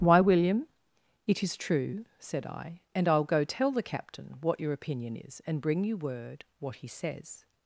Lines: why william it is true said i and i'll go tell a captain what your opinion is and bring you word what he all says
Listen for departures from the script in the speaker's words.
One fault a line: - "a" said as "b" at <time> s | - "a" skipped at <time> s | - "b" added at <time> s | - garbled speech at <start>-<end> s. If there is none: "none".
- "a" said as "the" at 3.7 s
- "all" skipped at 6.9 s